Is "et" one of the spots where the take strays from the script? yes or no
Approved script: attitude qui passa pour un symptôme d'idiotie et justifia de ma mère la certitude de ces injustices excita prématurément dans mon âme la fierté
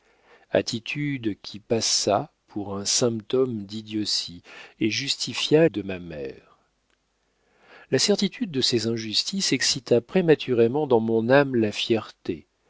no